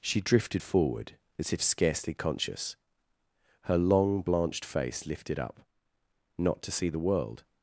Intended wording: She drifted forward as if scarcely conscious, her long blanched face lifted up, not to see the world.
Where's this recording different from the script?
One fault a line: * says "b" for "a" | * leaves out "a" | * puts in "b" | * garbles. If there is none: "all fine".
all fine